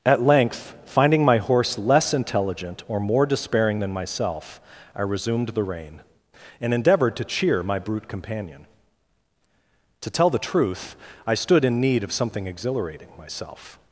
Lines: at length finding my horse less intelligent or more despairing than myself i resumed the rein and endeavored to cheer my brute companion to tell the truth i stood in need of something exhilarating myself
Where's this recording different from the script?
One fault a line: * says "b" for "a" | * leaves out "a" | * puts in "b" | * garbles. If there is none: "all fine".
all fine